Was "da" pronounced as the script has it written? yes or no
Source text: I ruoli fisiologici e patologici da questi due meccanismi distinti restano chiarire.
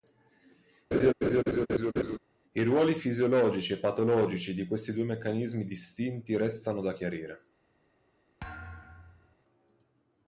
no